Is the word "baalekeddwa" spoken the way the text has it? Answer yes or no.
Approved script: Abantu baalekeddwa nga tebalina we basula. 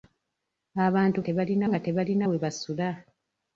no